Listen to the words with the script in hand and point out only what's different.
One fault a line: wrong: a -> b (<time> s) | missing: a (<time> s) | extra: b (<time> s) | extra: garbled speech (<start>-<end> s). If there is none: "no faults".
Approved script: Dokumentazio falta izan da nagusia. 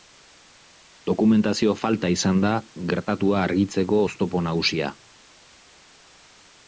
extra: gertatua argitzeko oztopo (2.9 s)